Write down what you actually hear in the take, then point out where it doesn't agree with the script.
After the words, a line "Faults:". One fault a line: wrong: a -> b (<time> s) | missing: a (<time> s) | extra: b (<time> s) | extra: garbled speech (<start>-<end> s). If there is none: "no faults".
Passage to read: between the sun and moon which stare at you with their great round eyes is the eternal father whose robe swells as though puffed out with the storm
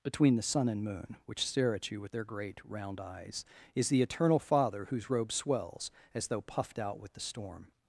between the sun and moon which stare at you with their great round eyes is the eternal father whose robe swells as though puffed out with the storm
Faults:
no faults